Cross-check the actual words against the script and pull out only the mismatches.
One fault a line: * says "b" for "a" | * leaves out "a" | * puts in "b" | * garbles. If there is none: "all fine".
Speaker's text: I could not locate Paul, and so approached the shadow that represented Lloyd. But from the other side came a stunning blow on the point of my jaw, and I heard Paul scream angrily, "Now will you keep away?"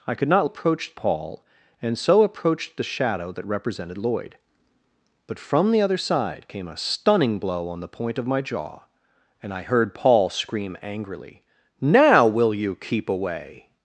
* says "approached" for "locate"